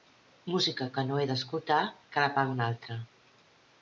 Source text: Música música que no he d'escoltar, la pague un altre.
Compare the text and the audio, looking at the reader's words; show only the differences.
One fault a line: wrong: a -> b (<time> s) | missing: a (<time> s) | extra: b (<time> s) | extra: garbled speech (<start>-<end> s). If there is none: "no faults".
missing: música (0.9 s)
extra: que (2.1 s)